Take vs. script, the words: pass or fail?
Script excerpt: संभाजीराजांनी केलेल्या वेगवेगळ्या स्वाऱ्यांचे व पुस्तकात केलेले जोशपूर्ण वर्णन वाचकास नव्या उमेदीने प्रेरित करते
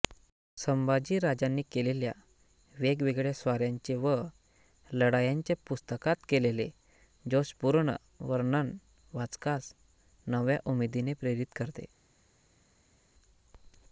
fail